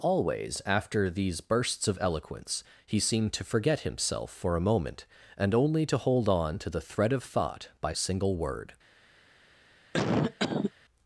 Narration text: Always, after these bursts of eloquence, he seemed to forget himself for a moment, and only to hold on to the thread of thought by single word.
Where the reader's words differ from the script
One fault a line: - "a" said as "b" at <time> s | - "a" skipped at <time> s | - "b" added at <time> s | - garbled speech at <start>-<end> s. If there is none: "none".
none